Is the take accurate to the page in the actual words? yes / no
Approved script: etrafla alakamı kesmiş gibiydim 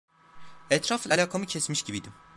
yes